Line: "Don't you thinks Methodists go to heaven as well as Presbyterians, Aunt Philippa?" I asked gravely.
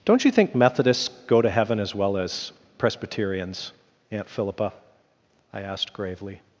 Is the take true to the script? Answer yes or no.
no